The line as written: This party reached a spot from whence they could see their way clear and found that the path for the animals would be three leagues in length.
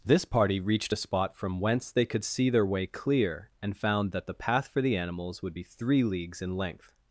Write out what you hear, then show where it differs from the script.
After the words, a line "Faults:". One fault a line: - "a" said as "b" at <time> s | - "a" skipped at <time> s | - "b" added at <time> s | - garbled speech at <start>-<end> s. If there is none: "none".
This party reached a spot from whence they could see their way clear and found that the path for the animals would be three leagues in length.
Faults:
none